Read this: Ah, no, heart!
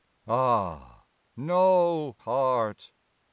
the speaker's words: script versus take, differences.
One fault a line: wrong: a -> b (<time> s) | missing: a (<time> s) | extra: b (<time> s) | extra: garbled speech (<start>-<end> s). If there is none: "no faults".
no faults